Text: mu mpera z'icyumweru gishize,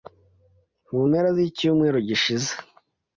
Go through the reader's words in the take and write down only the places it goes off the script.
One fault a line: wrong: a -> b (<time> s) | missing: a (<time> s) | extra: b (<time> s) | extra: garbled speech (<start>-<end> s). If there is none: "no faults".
no faults